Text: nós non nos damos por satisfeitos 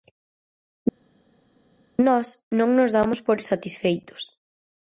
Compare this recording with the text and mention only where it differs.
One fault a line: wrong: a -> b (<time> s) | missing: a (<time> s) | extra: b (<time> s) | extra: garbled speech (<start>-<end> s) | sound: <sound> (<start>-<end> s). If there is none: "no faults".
no faults